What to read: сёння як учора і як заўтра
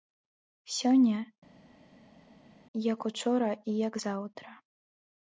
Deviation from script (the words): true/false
false